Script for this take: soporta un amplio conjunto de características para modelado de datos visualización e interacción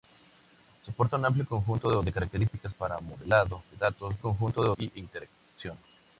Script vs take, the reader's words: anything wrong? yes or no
yes